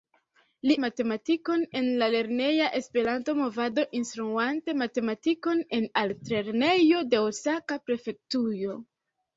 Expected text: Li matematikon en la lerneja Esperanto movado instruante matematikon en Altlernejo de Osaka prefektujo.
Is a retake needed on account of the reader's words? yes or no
no